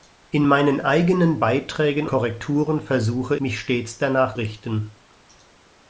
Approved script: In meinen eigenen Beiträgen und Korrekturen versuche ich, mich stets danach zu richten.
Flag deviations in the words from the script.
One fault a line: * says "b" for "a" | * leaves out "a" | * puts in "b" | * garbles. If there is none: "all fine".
* leaves out "und"
* leaves out "ich"
* leaves out "zu"